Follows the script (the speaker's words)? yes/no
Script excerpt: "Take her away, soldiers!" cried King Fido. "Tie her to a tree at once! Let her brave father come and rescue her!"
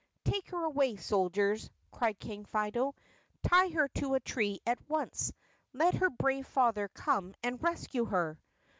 yes